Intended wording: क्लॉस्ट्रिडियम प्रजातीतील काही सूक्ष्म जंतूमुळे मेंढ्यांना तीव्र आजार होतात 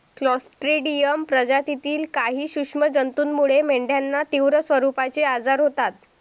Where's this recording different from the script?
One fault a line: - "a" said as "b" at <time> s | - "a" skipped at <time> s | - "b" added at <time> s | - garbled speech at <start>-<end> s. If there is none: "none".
- "स्वरूपाचे" added at 4.6 s